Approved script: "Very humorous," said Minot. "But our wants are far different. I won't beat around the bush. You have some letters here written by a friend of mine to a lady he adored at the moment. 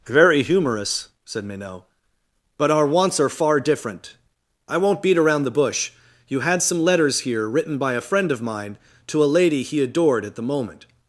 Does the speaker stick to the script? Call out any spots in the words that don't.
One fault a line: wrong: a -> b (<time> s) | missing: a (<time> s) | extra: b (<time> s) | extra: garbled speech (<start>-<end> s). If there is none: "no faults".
wrong: have -> had (6.4 s)